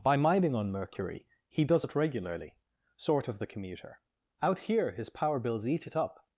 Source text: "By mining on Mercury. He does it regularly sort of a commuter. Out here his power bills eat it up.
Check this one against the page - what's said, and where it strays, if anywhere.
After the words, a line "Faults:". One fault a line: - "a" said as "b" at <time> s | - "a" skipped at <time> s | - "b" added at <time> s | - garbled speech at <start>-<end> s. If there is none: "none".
"By mining on Mercury. He does it regularly sort of the commuter. Out here his power bills eat it up.
Faults:
- "a" said as "the" at 3.4 s